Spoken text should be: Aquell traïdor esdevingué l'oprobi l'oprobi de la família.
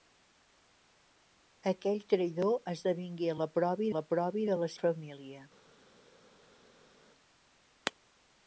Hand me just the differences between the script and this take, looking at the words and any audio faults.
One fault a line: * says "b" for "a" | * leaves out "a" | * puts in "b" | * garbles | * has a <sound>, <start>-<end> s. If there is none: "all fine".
all fine